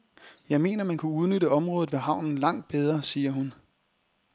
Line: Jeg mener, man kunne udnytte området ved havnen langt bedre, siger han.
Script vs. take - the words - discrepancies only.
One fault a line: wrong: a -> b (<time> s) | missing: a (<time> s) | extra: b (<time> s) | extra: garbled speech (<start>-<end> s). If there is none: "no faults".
wrong: han -> hun (3.3 s)